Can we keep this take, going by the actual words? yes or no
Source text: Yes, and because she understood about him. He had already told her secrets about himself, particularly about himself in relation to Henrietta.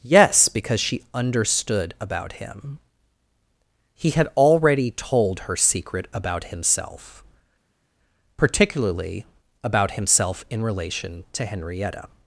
no